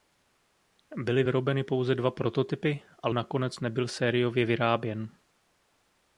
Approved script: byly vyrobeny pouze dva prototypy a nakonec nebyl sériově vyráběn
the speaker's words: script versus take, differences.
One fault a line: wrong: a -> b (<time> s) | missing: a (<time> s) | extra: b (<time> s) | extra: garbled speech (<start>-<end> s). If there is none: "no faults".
no faults